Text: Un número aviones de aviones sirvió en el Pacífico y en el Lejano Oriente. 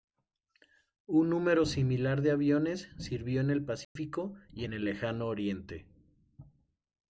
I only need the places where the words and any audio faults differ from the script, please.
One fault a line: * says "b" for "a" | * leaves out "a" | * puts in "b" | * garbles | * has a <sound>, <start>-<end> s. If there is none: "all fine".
* says "similar" for "aviones"
* has a dropout, 3.8-4.0 s